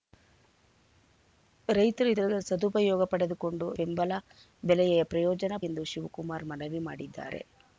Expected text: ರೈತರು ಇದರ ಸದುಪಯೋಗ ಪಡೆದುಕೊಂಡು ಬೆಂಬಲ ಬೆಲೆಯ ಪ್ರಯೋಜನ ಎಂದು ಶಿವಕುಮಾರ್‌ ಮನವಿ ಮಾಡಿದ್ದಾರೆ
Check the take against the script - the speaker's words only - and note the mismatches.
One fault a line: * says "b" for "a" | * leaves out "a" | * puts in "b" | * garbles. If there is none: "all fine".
all fine